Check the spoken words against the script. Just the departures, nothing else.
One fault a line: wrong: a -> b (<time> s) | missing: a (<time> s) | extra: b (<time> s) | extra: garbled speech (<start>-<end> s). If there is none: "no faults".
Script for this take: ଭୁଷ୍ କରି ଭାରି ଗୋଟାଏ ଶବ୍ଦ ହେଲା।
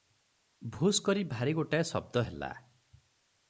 no faults